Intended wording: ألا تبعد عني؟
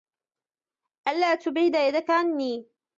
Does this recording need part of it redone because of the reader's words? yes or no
yes